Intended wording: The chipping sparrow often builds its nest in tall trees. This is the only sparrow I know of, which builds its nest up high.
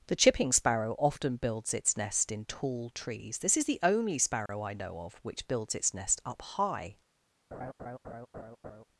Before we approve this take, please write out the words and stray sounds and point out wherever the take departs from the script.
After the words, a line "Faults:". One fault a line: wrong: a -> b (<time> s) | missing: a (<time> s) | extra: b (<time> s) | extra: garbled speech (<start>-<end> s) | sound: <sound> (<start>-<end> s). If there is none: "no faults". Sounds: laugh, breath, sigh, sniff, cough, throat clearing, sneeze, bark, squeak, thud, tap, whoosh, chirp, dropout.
The chipping sparrow often builds its nest in tall trees. This is the only sparrow I know of, which builds its nest up high.
Faults:
sound: dropout (4.5-4.5 s)
sound: laugh (7.5-8.8 s)